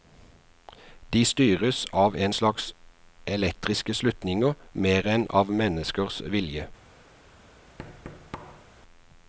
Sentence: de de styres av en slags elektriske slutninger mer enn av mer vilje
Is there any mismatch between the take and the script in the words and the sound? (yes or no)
yes